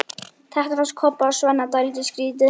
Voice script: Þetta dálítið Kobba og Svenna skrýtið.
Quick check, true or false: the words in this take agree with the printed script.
false